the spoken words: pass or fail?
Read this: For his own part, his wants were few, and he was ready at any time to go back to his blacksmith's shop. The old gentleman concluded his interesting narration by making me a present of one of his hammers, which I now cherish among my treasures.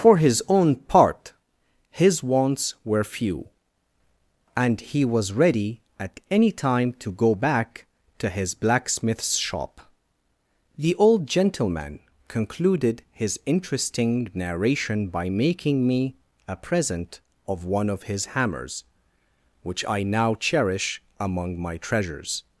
pass